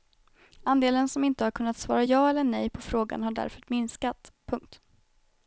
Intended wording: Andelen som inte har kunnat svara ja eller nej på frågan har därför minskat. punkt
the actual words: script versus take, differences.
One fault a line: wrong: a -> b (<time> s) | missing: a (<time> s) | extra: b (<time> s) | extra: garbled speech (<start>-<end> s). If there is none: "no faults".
no faults